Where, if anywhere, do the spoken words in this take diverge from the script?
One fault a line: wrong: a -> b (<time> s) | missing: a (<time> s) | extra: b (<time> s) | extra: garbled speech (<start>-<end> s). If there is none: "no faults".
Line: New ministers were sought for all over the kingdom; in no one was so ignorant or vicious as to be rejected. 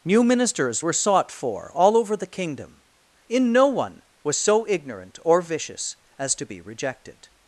no faults